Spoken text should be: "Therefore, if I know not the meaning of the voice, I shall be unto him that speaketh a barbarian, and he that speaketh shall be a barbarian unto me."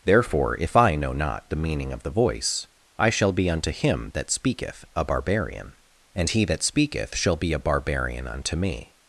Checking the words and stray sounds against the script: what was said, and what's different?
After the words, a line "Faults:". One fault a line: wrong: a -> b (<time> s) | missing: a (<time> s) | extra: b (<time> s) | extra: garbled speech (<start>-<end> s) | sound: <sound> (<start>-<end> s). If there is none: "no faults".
"Therefore, if I know not the meaning of the voice, I shall be unto him that speaketh a barbarian, and he that speaketh shall be a barbarian unto me."
Faults:
no faults